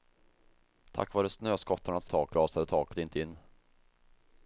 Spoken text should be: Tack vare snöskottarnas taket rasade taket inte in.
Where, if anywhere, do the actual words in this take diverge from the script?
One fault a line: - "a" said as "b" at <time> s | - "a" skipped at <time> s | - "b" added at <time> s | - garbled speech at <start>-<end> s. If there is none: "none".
none